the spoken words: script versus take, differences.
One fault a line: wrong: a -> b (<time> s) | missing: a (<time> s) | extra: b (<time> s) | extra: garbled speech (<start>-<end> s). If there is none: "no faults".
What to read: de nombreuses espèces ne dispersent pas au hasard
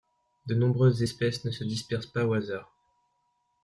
extra: se (1.5 s)